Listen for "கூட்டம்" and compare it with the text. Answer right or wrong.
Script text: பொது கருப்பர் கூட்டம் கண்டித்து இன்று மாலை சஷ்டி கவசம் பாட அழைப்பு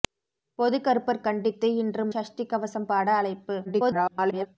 wrong